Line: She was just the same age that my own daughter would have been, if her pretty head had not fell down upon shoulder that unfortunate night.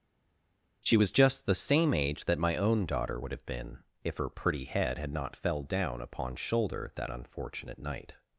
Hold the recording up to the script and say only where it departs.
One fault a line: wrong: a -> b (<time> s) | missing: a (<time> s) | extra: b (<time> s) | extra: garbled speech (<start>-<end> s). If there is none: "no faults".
no faults